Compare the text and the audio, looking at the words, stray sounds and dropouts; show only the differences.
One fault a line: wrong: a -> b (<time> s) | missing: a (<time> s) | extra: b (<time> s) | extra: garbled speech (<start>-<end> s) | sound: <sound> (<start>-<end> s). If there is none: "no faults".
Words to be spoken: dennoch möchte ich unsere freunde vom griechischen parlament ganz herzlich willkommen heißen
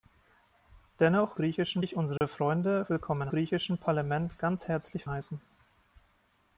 wrong: möchte -> griechischen (1.3 s)
sound: dropout (2.2-2.2 s)
wrong: vom -> willkommen (2.9 s)
missing: willkommen (5.1 s)